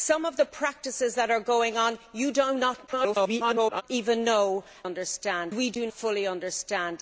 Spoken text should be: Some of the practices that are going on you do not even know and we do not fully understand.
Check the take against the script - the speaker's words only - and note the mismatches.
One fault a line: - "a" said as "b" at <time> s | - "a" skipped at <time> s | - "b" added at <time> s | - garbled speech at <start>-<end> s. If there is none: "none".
- garbled speech at 2.9-3.8 s
- "and" said as "understand" at 4.8 s
- "not" skipped at 5.9 s